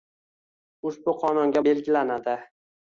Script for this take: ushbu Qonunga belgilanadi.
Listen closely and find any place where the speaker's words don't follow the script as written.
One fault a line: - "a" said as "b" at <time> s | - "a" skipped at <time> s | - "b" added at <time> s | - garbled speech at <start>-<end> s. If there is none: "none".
none